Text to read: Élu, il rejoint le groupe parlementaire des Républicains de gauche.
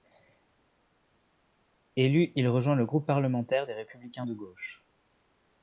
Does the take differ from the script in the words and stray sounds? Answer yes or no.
no